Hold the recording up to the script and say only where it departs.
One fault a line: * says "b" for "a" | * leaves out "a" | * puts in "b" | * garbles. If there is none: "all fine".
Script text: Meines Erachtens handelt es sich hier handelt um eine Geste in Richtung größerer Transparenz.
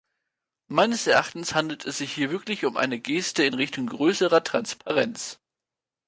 * says "wirklich" for "handelt"